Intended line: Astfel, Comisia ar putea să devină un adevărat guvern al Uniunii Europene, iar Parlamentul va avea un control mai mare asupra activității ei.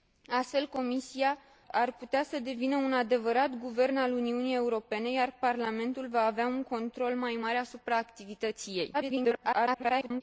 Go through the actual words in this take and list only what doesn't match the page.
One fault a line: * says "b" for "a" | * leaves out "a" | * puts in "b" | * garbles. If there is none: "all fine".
* garbles